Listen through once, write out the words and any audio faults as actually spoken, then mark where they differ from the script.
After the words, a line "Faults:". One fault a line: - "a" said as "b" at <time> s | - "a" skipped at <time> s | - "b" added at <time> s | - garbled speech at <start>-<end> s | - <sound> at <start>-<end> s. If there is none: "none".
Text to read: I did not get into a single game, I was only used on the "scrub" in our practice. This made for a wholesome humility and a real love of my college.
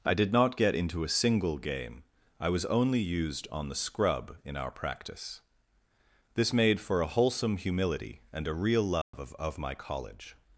I did not get into a single game, I was only used on the "scrub" in our practice. This made for a wholesome humility and a real love of of my college.
Faults:
- dropout at 9.0-9.1 s
- "of" added at 9.4 s